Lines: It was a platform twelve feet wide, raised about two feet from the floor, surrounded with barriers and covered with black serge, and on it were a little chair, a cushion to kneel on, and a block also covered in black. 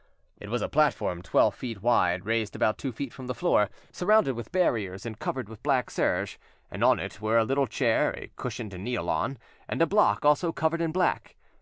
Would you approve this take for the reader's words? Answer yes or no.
yes